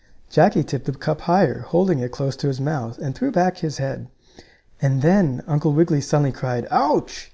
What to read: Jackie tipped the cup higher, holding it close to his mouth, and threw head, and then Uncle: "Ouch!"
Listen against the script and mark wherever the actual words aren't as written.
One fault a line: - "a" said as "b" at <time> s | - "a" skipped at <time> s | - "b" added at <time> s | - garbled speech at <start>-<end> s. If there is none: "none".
- "back his" added at 3.3 s
- "Wiggily suddenly cried" added at 5.7 s